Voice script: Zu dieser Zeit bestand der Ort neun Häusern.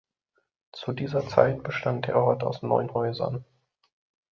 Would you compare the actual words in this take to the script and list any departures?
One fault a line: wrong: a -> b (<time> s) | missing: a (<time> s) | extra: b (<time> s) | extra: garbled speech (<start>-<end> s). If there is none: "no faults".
extra: aus (2.4 s)